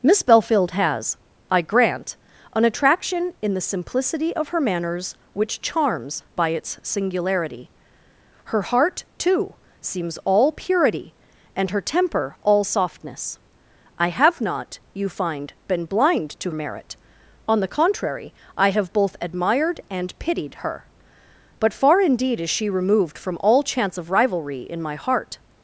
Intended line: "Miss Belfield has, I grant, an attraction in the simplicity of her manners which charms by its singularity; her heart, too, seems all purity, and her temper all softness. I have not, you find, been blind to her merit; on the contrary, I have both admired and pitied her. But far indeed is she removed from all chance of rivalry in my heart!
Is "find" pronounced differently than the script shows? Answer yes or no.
no